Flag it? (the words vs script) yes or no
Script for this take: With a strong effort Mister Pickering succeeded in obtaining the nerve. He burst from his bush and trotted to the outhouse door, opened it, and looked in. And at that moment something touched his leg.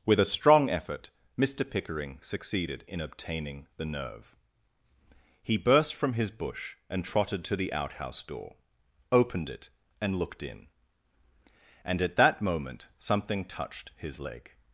no